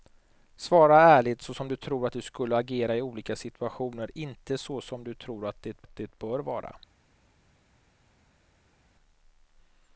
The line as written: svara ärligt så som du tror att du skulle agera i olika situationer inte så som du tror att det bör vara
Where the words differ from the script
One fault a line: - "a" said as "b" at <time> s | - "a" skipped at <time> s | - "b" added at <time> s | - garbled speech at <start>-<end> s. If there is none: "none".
- "att det" added at 5.8 s